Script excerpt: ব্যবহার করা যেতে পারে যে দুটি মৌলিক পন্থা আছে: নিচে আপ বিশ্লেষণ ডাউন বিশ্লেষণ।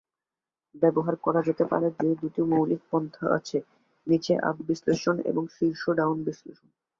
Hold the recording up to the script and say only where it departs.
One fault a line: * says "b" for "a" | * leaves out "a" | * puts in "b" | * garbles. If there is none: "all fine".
* puts in "এবং শীর্ষ"